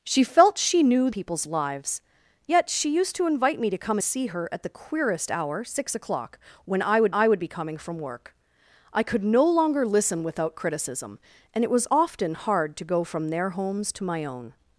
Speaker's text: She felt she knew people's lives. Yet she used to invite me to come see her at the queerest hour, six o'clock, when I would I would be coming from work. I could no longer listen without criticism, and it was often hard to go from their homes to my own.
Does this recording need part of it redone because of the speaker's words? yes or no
no